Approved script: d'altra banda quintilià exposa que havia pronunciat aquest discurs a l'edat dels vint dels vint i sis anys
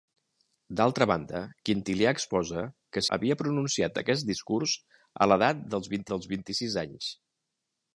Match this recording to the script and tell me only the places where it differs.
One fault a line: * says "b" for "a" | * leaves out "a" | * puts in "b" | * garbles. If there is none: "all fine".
all fine